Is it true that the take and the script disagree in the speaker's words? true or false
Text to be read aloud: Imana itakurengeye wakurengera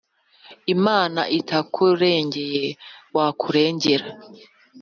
false